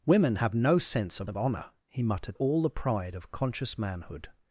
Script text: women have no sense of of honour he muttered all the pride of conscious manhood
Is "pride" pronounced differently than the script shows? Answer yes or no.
no